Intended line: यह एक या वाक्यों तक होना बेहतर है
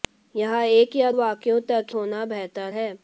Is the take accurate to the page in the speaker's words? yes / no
yes